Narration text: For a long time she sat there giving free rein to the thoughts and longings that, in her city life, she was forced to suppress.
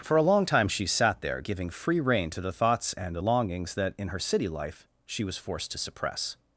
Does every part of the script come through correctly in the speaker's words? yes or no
no